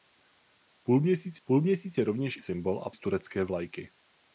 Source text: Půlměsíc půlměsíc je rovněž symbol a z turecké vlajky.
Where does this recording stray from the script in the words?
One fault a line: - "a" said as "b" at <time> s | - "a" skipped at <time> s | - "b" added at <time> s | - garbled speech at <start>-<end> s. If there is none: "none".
none